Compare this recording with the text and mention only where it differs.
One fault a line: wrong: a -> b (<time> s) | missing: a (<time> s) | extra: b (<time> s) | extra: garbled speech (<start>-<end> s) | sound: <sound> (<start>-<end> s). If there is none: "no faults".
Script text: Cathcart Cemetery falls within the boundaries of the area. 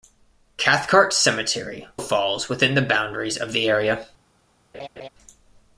sound: laugh (4.7-5.1 s)